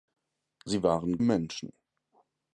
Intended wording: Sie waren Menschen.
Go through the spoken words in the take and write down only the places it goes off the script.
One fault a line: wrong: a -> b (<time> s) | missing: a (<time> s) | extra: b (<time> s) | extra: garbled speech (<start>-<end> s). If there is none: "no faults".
no faults